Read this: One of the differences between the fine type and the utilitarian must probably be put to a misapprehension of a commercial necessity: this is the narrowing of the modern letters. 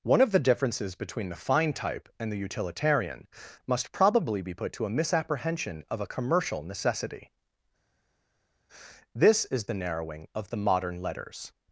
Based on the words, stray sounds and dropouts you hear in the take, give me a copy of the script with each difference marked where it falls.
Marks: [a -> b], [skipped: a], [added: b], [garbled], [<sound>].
One of the differences between the fine type and the utilitarian must probably be put to a misapprehension of a commercial necessity: this is the narrowing of the modern letters.